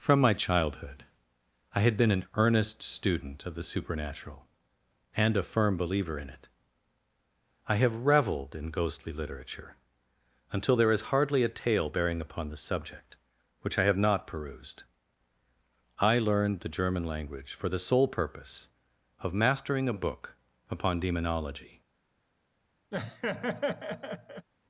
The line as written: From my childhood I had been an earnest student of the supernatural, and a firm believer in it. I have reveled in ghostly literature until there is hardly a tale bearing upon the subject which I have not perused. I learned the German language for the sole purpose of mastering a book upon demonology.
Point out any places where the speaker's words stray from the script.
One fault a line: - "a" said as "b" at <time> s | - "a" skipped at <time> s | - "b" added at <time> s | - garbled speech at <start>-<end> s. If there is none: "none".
none